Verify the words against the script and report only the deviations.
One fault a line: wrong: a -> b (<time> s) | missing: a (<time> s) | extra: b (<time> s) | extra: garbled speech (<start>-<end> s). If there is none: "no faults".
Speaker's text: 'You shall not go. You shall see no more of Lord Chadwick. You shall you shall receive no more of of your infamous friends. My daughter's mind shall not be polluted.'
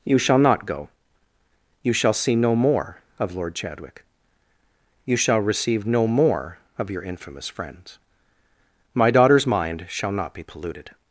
missing: you shall (5.4 s)
missing: of (6.9 s)